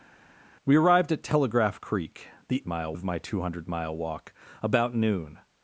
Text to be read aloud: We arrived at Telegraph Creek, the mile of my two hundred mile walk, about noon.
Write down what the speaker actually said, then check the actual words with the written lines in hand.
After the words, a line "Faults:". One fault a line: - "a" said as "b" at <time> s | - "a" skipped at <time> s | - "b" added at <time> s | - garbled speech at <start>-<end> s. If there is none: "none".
We arrived at Telegraph Creek, the mile of my two hundred mile walk, about noon.
Faults:
none